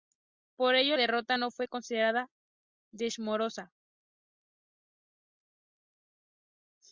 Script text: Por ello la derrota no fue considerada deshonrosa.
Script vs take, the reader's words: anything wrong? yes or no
yes